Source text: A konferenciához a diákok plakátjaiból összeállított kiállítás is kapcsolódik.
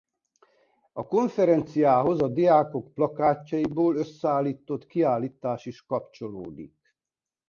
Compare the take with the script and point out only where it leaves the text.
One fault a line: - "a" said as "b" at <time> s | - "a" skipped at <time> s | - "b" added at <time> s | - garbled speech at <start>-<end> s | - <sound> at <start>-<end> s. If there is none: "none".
none